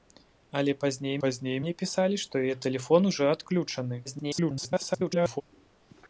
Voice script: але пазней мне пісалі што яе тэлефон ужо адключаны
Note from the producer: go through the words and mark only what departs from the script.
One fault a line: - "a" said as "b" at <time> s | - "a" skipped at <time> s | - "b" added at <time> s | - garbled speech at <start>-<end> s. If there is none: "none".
- "пазней" added at 1.2 s
- garbled speech at 4.0-5.4 s